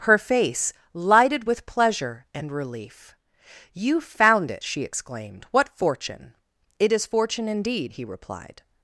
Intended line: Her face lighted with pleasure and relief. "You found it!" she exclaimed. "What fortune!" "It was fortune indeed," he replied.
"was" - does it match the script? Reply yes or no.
no